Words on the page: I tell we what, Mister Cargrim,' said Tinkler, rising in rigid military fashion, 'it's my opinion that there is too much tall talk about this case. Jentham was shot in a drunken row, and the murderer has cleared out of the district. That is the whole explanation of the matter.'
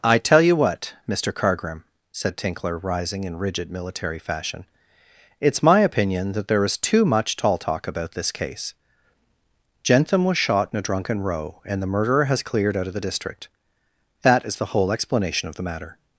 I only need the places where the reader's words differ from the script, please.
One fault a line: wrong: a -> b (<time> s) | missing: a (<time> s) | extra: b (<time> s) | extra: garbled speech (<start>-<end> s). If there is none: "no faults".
wrong: we -> you (0.4 s)